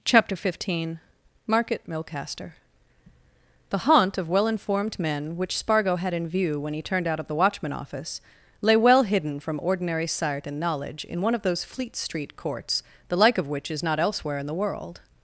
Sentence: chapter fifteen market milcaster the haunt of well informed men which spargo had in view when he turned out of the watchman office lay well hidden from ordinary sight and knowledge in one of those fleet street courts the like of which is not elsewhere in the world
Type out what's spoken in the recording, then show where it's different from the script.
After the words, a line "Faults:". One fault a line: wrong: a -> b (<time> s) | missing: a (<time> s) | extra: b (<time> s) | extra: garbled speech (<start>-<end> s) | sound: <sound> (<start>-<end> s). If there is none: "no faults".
chapter fifteen market milcaster the haunt of well informed men which spargo had in view when he turned out of the watchman office lay well hidden from ordinary sight and knowledge in one of those fleet street courts the like of which is not elsewhere in the world
Faults:
no faults